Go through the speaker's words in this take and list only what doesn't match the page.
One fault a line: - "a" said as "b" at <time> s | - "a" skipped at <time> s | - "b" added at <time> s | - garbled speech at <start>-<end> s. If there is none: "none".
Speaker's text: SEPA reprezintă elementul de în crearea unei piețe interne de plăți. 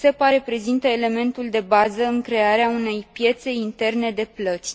- "bază" added at 1.7 s